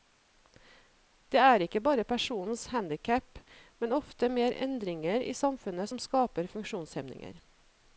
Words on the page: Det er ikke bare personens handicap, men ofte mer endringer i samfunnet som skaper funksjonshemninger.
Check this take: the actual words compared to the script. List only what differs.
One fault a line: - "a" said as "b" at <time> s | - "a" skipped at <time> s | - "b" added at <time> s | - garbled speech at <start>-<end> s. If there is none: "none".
none